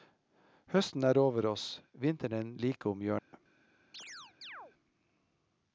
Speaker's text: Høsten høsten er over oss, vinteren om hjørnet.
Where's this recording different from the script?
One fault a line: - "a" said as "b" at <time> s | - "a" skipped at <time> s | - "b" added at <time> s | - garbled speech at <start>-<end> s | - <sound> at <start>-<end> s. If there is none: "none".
- "høsten" skipped at 1.0 s
- "like" added at 2.6 s
- dropout at 3.2-3.3 s
- chirp at 3.9-4.7 s